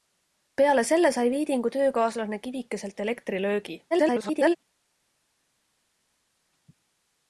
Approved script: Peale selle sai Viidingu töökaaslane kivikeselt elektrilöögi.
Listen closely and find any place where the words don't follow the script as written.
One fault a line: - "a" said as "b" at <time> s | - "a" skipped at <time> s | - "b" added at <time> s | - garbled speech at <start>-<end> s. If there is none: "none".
- garbled speech at 3.9-4.6 s